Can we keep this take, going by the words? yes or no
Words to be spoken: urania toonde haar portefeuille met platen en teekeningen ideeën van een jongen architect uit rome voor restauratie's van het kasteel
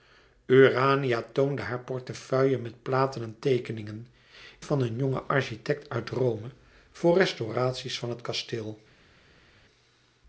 no